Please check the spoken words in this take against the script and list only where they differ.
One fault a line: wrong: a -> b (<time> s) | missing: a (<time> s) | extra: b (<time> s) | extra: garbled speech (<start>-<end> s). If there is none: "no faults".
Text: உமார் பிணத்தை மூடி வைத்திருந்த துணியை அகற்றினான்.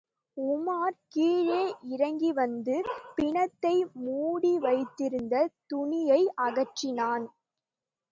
extra: கீழே இறங்கிவந்து (1.1 s)